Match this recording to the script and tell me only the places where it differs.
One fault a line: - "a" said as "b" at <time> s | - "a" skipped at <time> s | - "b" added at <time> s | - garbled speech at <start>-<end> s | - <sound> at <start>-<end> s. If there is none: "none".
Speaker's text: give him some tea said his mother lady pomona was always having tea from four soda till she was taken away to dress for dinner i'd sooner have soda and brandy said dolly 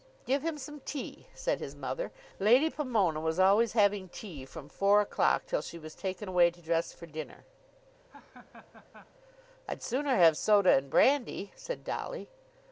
- "soda" said as "o'clock" at 5.0 s
- laugh at 8.1-9.1 s